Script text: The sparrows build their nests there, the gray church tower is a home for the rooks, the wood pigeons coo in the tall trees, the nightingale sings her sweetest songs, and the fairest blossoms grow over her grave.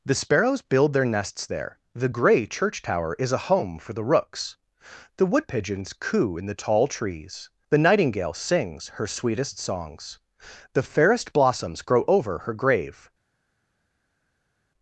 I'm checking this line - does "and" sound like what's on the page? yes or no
no